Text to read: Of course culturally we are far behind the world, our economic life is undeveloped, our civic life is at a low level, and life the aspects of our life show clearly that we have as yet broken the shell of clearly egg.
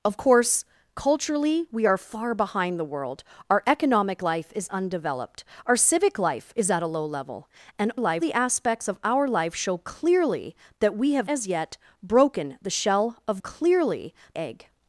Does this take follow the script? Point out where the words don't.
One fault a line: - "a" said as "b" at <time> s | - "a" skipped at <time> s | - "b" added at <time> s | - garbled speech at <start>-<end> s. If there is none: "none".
none